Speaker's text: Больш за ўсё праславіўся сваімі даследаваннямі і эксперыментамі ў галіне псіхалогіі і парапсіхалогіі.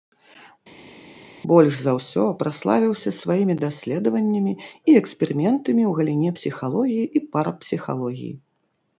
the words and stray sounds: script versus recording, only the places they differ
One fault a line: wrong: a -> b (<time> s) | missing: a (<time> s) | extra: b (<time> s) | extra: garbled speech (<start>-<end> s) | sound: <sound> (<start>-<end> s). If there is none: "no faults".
no faults